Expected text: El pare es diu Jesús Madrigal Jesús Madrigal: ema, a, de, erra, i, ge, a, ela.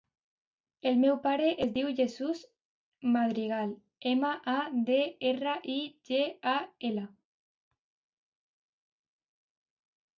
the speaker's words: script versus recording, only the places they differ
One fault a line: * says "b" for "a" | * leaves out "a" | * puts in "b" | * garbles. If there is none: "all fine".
* puts in "meu"
* leaves out "Jesús Madrigal"